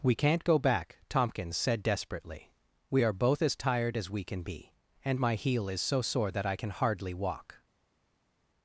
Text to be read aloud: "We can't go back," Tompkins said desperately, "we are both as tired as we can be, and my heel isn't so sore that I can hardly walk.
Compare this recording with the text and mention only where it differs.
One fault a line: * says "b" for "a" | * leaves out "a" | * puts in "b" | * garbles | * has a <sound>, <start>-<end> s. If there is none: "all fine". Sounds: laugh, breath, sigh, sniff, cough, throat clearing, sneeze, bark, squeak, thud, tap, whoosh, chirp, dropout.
* says "is" for "isn't"